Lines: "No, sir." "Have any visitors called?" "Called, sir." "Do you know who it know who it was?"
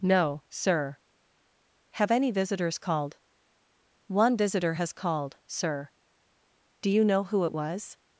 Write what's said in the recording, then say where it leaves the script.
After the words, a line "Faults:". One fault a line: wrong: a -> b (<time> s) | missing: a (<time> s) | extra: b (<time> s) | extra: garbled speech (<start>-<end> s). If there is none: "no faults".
"No, sir." "Have any visitors called?" "One visitor has called, sir." "Do you know who it was?"
Faults:
extra: One visitor has (4.1 s)
missing: know who it (7.5 s)